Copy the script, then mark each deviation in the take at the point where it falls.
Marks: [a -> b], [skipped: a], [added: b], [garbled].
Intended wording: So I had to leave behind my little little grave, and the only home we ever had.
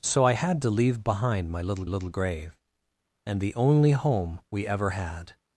So I had to leave behind my little little grave, and the only home we ever had.